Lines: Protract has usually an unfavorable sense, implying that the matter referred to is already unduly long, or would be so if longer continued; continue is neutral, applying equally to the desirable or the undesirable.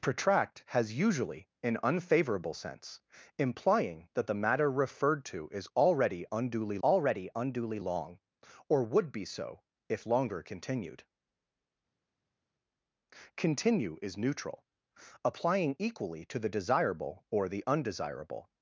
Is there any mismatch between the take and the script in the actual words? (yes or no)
yes